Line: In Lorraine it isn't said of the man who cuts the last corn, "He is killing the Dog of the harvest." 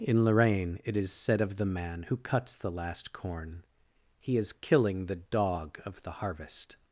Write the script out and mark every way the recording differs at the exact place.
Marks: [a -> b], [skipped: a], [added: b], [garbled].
In Lorraine it [isn't -> is] said of the man who cuts the last corn, "He is killing the Dog of the harvest."